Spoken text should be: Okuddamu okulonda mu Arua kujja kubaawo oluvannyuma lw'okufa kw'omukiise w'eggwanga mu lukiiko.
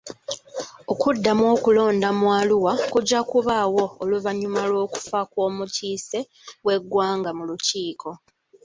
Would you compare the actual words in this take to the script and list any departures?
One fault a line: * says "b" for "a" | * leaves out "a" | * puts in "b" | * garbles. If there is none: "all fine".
all fine